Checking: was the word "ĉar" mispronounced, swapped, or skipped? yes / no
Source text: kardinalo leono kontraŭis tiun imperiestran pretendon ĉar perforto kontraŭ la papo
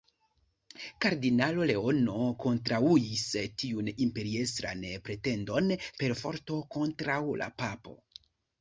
yes